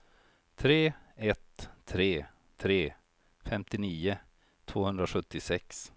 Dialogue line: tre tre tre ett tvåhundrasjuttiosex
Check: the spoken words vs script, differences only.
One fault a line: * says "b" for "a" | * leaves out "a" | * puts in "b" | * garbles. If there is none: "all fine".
* puts in "ett"
* says "femtionio" for "ett"